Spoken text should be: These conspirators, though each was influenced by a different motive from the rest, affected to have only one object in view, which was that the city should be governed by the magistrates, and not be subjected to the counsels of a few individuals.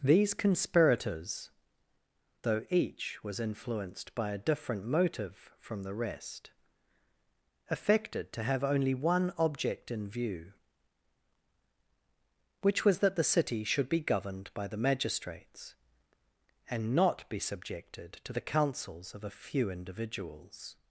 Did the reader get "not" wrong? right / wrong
right